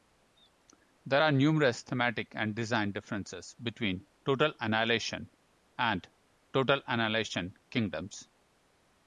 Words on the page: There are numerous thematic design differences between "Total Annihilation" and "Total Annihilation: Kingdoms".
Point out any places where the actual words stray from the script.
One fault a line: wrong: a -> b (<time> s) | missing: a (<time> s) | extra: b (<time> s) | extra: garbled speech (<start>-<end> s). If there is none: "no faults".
extra: and (2.4 s)